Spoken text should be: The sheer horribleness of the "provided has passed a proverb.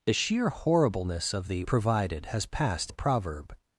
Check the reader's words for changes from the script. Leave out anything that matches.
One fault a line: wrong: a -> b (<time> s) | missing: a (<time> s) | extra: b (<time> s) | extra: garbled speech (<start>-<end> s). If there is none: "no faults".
no faults